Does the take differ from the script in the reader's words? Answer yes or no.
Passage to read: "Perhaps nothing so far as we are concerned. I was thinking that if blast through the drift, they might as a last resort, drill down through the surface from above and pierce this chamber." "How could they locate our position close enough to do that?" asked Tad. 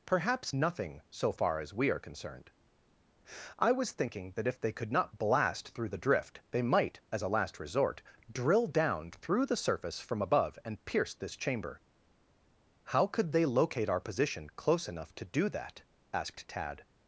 yes